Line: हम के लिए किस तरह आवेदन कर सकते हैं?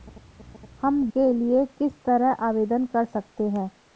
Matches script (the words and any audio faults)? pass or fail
pass